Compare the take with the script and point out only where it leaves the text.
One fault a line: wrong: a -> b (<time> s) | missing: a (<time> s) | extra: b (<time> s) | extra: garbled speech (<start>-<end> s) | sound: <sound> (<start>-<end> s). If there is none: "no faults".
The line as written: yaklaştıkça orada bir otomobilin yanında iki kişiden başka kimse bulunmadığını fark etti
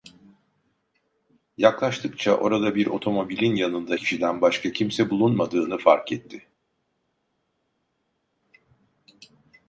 missing: iki (4.0 s)